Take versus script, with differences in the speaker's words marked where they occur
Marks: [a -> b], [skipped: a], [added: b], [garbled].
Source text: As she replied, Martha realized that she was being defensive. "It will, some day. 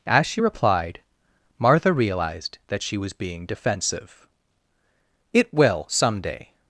As she replied, Martha realized that she was being defensive. "It will, some day.